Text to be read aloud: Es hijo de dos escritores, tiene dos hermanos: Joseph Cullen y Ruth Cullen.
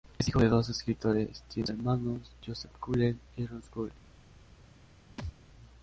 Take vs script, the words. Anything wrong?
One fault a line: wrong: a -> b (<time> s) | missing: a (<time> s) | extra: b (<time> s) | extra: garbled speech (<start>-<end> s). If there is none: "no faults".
no faults